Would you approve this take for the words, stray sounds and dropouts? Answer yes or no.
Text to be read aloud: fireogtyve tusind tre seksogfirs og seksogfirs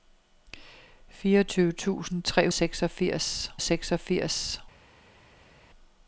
yes